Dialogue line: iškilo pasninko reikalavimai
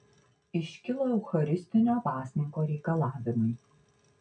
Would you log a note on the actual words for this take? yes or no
yes